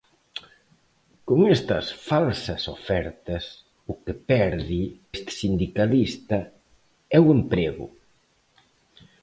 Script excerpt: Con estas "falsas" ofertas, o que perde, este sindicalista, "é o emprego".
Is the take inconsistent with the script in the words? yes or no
no